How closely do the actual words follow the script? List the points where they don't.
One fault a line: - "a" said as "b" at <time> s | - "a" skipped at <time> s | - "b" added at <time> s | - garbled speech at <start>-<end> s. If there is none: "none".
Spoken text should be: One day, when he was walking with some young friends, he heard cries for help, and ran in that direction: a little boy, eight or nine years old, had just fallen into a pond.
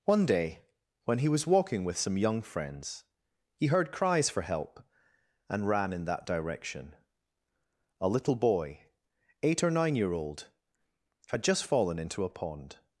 - "years" said as "year" at 9.9 s